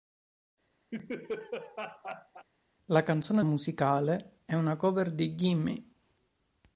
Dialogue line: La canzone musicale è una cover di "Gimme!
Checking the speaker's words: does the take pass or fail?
pass